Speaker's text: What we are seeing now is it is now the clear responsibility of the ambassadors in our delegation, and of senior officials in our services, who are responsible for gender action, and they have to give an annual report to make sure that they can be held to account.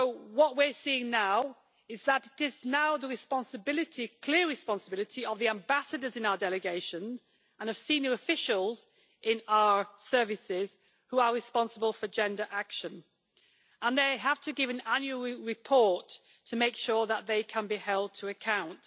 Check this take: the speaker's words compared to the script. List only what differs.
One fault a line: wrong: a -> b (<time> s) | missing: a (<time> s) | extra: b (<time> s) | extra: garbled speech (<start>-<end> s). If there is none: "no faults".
extra: that (2.0 s)